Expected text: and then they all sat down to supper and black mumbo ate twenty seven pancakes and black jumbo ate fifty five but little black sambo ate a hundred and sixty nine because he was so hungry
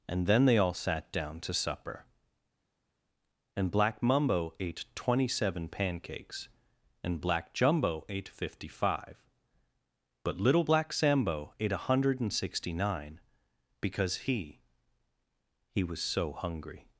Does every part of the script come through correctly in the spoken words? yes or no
no